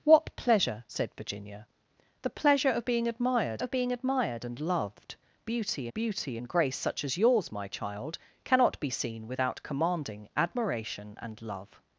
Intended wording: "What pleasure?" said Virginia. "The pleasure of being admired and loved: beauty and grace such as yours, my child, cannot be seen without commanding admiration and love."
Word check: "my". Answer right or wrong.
right